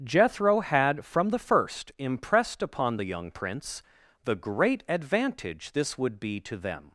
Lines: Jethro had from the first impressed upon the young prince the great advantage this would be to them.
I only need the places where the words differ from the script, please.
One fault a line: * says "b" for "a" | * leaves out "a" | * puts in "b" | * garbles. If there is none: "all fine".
all fine